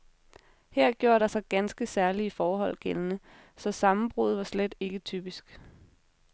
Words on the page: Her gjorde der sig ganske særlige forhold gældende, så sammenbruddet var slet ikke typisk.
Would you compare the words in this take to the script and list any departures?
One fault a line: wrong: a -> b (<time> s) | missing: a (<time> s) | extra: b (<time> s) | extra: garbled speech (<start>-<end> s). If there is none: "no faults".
no faults